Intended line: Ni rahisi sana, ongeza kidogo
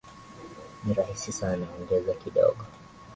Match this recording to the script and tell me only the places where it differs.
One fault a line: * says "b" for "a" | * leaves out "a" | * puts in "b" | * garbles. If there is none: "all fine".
all fine